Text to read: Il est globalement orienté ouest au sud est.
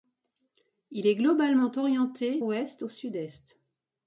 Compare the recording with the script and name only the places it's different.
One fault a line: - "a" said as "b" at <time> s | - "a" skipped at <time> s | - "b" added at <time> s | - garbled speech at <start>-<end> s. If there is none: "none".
none